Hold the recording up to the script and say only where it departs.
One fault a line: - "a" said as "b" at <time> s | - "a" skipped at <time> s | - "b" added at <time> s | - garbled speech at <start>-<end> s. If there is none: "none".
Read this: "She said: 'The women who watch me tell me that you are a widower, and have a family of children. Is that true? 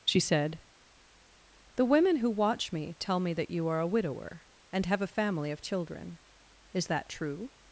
none